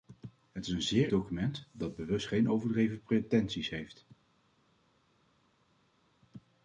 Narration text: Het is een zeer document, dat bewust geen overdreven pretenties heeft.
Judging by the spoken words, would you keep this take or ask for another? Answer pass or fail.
pass